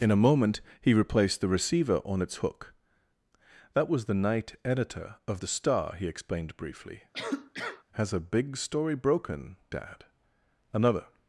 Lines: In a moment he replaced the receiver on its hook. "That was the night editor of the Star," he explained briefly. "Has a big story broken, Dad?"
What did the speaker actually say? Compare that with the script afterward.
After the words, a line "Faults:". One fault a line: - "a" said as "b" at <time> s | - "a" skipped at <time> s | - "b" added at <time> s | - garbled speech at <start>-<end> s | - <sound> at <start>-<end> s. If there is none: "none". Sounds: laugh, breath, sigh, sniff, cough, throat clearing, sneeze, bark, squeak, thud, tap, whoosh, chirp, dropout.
In a moment he replaced the receiver on its hook. "That was the night editor of the Star," he explained briefly. "Has a big story broken, Dad?" "Another
Faults:
- cough at 7.1-7.8 s
- "Another" added at 10.7 s